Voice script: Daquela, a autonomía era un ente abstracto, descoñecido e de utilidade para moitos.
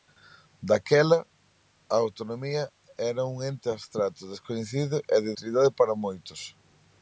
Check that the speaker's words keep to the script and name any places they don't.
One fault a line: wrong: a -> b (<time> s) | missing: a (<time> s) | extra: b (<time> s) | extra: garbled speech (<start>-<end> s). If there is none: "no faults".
no faults